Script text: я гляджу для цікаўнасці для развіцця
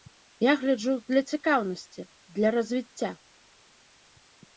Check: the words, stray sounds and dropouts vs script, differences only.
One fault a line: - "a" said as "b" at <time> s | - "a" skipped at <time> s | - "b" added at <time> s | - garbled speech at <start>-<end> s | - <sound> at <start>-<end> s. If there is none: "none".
none